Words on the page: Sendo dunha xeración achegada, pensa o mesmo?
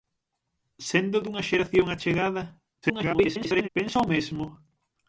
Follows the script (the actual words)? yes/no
no